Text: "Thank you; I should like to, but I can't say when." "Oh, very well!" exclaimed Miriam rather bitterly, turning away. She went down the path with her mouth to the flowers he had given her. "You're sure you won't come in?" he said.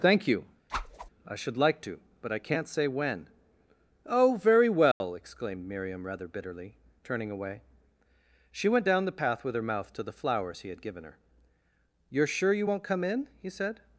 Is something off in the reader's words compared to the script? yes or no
no